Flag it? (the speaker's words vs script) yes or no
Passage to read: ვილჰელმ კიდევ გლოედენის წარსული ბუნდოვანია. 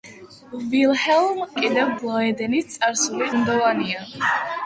no